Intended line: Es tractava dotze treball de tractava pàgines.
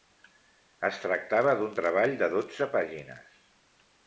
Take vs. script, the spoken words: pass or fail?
fail